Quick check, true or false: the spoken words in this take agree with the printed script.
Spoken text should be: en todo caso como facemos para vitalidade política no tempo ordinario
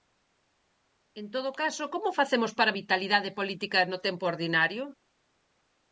true